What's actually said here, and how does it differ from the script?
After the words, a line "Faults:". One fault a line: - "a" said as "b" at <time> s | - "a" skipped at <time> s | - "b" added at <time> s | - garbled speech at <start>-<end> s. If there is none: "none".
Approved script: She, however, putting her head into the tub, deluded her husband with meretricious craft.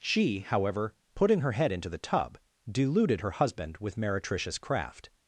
She, however, putting her head into the tub, deluded her husband with meretricious craft.
Faults:
none